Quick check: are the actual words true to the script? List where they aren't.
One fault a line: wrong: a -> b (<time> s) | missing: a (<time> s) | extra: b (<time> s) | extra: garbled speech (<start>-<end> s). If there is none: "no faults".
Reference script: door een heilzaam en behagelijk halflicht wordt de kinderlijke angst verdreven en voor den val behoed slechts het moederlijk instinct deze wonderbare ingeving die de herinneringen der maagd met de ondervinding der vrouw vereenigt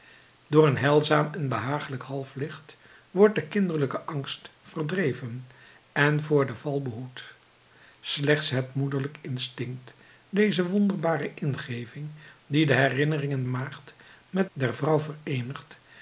missing: der (13.4 s)
missing: de ondervinding (14.5 s)